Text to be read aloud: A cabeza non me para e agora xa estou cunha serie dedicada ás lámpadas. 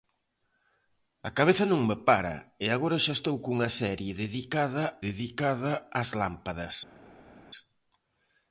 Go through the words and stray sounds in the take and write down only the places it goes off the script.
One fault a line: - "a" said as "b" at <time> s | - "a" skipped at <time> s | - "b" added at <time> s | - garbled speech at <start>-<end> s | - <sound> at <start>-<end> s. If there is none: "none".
- "dedicada" added at 5.1 s